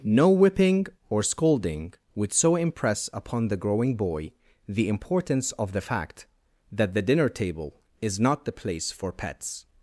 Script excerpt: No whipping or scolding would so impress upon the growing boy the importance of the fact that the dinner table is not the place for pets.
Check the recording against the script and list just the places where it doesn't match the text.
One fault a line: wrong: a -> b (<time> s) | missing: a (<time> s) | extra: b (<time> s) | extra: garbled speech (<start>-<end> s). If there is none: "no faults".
no faults